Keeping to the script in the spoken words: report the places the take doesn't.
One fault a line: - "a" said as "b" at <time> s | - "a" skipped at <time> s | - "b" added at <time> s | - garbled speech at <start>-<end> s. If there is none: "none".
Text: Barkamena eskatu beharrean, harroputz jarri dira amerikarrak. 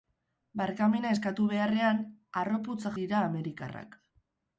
- "jarri" skipped at 2.8 s